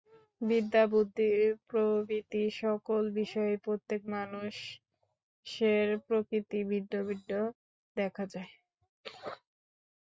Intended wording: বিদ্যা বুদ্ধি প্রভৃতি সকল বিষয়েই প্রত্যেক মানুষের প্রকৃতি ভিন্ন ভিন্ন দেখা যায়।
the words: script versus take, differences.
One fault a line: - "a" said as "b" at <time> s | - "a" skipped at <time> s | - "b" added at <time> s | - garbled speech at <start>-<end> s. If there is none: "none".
none